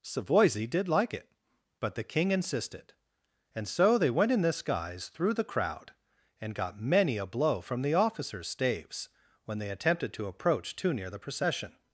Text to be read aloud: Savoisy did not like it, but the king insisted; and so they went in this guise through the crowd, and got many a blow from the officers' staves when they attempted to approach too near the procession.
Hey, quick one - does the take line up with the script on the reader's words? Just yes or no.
no